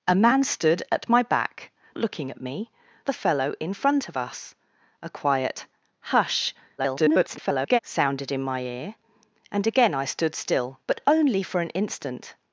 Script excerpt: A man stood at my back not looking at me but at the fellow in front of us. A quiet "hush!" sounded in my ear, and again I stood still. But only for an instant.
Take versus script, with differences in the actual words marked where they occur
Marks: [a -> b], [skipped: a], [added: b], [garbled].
A man stood at my back [skipped: not] looking at me [skipped: but at] the fellow in front of us. A quiet "hush!" [garbled] sounded in my ear, and again I stood still. But only for an instant.